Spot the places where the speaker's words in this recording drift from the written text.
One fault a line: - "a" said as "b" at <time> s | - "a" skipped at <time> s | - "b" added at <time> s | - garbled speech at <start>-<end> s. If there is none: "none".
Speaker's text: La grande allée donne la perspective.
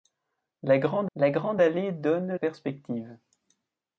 - "la grande" added at 1.2 s
- "la" skipped at 2.3 s